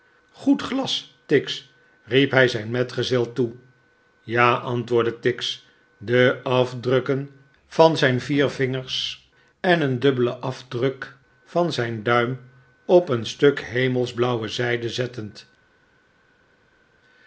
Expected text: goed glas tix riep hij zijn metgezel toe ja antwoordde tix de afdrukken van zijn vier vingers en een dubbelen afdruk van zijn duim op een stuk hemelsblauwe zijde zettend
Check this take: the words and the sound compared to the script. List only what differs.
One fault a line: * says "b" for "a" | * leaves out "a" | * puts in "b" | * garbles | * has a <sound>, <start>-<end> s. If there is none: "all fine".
all fine